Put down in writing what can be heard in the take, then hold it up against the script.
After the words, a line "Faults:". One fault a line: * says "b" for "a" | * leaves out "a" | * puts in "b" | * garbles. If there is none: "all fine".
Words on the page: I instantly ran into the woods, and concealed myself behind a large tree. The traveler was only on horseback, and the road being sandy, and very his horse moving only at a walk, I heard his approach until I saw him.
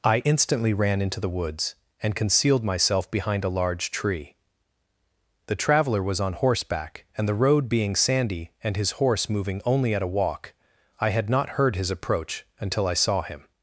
I instantly ran into the woods, and concealed myself behind a large tree. The traveler was on horseback, and the road being sandy, and his horse moving only at a walk, I had not heard his approach until I saw him.
Faults:
* leaves out "only"
* leaves out "very"
* puts in "had not"